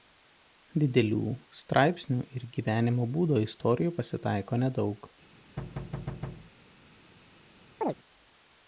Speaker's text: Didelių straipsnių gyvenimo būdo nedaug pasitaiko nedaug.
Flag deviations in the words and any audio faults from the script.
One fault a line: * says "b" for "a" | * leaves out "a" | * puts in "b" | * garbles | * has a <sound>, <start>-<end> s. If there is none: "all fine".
* puts in "ir"
* says "istorijų" for "nedaug"
* has a thud, 5.6-6.5 s
* has a chirp, 7.8-7.9 s